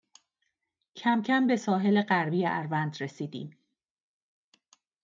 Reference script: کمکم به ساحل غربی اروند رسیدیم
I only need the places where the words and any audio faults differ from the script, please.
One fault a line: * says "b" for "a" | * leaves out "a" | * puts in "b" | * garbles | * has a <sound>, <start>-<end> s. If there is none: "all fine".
all fine